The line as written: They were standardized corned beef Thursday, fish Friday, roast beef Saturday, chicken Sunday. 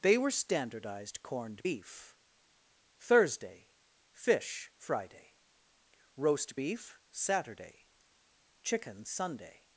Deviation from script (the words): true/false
false